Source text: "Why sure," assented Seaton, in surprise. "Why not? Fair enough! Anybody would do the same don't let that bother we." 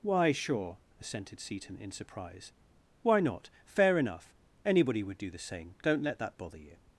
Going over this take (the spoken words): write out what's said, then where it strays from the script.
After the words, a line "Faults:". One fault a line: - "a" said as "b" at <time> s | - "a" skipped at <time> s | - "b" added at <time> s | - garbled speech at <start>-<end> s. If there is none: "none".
"Why sure," assented Seaton, in surprise. "Why not? Fair enough! Anybody would do the same don't let that bother you."
Faults:
- "we" said as "you" at 6.6 s